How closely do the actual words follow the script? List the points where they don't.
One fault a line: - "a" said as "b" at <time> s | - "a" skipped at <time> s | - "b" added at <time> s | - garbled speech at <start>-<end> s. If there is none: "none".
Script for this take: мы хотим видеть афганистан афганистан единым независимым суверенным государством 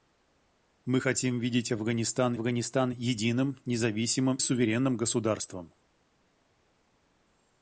none